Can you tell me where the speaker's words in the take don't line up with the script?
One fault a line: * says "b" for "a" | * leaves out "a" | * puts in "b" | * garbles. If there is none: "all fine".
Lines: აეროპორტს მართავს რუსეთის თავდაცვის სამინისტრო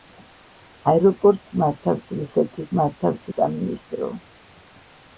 * says "მართავს" for "თავდაცვის"